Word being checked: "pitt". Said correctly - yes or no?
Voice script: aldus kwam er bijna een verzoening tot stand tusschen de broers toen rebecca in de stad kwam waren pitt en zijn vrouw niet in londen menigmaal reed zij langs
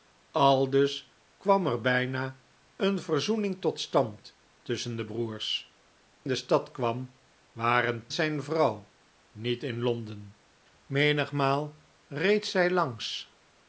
no